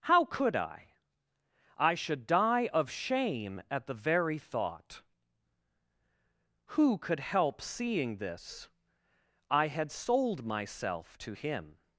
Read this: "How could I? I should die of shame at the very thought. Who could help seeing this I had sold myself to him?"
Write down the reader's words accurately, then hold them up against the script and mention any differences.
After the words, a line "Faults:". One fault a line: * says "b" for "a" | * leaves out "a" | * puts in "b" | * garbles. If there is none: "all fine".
"How could I? I should die of shame at the very thought. Who could help seeing this I had sold myself to him?"
Faults:
all fine